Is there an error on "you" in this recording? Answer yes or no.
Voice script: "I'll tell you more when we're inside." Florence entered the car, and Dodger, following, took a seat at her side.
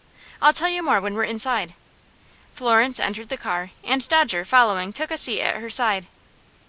no